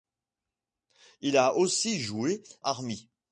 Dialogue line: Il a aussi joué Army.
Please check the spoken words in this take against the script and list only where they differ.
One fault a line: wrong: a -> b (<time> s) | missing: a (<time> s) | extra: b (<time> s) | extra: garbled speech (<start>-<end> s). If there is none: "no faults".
no faults